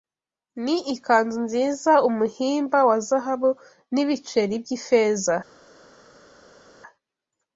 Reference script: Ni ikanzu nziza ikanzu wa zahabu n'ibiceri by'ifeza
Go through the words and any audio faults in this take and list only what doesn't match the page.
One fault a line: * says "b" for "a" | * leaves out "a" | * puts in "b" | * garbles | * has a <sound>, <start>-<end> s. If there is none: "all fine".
* says "umuhimba" for "ikanzu"